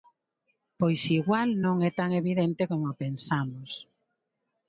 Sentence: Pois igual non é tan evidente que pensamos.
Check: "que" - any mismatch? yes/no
yes